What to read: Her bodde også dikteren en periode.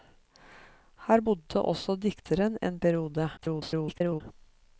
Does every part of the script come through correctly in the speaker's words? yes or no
no